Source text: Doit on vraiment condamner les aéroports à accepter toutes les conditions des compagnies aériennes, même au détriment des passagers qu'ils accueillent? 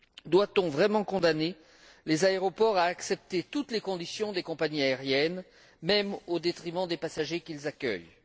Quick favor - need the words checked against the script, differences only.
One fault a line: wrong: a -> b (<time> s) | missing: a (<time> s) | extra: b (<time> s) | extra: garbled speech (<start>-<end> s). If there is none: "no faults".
no faults